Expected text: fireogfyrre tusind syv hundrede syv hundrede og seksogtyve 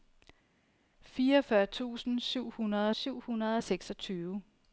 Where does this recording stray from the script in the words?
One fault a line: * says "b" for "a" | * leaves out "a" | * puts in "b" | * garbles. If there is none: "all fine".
all fine